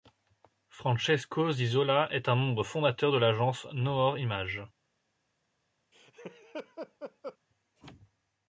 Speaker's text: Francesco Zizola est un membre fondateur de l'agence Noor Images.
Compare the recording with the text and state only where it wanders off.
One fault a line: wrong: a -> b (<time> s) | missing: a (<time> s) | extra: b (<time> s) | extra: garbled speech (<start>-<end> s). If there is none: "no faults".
no faults